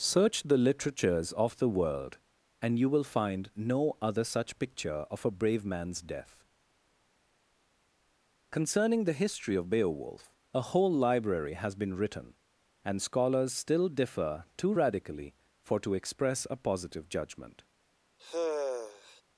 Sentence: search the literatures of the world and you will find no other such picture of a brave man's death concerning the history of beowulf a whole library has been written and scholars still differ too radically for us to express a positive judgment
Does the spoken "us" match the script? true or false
false